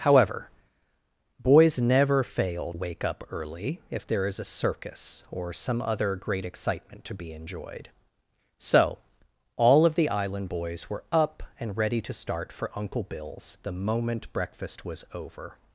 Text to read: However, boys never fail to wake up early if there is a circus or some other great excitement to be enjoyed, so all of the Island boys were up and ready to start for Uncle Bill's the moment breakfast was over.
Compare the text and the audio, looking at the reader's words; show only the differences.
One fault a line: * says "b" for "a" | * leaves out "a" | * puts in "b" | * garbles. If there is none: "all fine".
* leaves out "to"